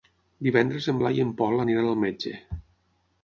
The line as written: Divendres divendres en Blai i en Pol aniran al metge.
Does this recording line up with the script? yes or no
no